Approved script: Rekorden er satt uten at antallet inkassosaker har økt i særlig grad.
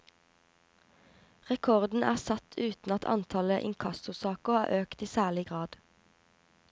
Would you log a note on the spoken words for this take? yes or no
no